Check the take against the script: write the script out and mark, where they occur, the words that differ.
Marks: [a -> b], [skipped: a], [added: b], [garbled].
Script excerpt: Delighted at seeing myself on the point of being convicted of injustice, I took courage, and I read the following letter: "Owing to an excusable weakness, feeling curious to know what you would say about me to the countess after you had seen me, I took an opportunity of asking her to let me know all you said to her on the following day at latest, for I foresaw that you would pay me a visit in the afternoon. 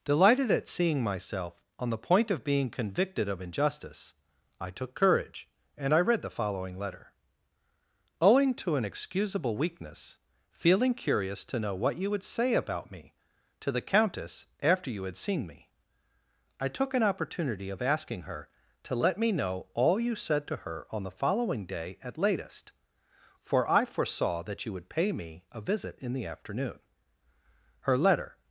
Delighted at seeing myself on the point of being convicted of injustice, I took courage, and I read the following letter: "Owing to an excusable weakness, feeling curious to know what you would say about me to the countess after you had seen me, I took an opportunity of asking her to let me know all you said to her on the following day at latest, for I foresaw that you would pay me a visit in the afternoon. [added: Her letter]